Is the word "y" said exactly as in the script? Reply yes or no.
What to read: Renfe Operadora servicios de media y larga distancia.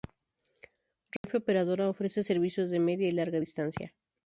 yes